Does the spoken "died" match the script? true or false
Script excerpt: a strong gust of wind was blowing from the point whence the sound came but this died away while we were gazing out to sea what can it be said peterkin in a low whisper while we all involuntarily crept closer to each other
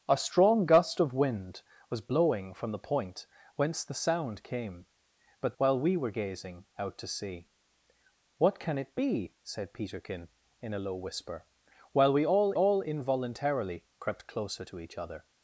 false